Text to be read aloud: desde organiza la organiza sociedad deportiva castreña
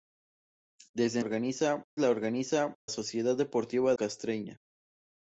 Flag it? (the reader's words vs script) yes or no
no